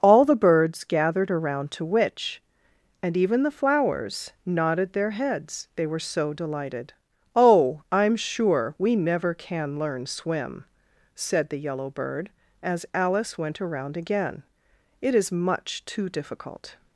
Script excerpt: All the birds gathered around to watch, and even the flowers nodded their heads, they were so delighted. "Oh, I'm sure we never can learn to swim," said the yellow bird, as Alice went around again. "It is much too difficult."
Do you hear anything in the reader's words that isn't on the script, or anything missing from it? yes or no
yes